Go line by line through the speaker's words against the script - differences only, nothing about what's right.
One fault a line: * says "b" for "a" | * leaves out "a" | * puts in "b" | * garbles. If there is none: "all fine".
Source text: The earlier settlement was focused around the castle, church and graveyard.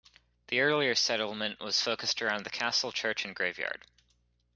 all fine